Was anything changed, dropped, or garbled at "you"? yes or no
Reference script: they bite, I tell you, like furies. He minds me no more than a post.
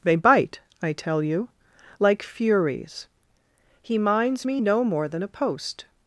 no